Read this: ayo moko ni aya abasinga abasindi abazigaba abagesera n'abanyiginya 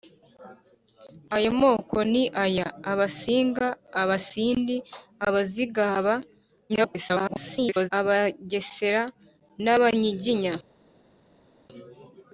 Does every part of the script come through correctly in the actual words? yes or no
no